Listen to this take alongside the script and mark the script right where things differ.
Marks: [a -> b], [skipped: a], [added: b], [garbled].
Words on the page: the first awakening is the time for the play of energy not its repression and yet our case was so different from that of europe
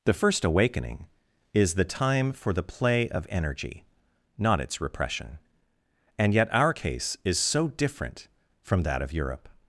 the first awakening is the time for the play of energy not its repression and yet our case [was -> is] so different from that of europe